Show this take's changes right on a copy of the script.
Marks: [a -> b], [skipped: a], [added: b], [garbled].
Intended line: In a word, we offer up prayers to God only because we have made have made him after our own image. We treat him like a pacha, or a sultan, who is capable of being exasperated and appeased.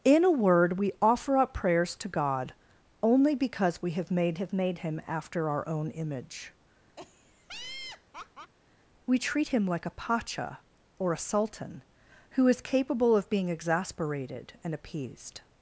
In a word, we offer up prayers to God only because we have made have made him after our own image. We treat him like a pacha, or a sultan, who is capable of being exasperated and appeased.